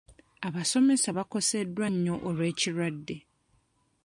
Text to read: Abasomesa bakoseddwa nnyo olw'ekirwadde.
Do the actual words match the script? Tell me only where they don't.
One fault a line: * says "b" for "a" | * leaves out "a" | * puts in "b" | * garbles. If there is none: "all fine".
all fine